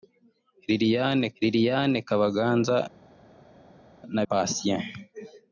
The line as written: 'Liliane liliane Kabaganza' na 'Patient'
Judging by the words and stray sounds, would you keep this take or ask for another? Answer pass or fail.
pass